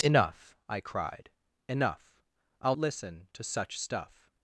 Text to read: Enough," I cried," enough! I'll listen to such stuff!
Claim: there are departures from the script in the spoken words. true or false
false